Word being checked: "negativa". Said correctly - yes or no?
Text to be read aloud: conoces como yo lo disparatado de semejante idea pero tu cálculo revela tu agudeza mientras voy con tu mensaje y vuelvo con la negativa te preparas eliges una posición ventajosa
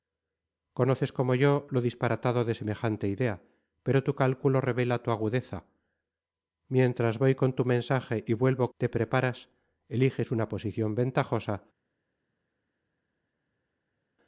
no